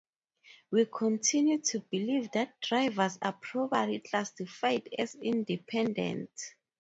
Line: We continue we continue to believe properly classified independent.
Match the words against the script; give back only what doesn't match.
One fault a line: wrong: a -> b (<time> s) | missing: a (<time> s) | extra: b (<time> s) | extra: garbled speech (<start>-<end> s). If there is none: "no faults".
wrong: we continue to believe -> to believe that drivers are (1.6 s)
extra: as (5.0 s)